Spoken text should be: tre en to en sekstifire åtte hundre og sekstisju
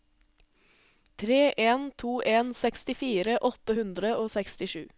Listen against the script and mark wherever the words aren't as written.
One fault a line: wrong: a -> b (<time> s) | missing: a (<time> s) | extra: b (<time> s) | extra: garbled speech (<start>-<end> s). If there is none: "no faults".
no faults